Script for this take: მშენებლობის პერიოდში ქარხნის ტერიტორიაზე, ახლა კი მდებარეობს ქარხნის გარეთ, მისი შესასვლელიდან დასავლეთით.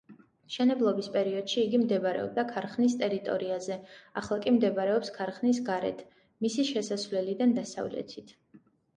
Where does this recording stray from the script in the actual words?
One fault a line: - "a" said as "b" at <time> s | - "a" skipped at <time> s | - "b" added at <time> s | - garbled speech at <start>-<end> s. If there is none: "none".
- "იგი მდებარეობდა" added at 1.6 s